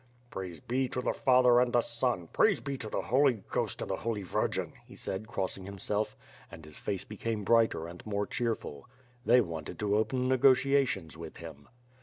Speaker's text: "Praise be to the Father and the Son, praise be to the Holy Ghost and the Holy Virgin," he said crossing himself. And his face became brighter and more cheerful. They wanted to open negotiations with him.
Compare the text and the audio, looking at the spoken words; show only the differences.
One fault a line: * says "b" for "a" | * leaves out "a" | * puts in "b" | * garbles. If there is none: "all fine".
all fine